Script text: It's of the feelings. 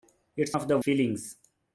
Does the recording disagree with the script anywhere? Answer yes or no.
no